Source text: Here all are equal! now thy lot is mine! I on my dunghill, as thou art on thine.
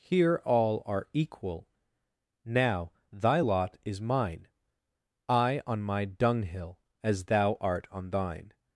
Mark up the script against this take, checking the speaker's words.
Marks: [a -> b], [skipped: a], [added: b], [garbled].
Here all are equal! now thy lot is mine! I on my dunghill, as thou art on thine.